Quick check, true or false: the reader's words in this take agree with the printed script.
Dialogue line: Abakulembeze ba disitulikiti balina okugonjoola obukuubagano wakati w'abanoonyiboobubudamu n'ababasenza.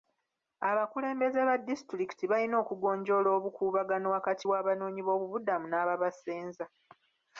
true